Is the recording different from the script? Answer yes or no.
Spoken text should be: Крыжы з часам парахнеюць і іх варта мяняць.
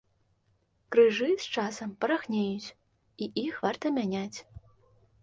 no